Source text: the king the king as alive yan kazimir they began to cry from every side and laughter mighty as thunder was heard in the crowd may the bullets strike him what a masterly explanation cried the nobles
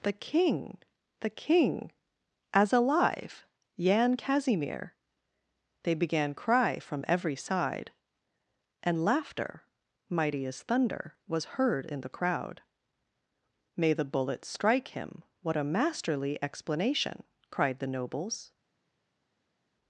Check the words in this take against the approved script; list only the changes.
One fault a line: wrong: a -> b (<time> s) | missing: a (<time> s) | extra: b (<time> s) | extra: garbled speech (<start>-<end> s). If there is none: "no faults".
missing: to (6.3 s)